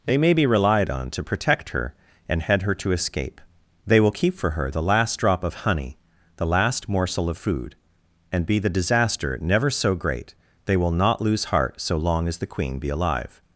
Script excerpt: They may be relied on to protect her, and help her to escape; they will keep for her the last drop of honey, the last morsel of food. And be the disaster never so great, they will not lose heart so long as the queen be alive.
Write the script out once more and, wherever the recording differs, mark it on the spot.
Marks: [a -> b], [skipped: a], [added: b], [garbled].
They may be relied on to protect her, and [help -> head] her to escape; they will keep for her the last drop of honey, the last morsel of food. And be the disaster never so great, they will not lose heart so long as the queen be alive.